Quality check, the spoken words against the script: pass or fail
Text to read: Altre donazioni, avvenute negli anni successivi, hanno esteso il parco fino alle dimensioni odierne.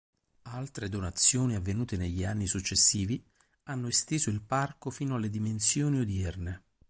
pass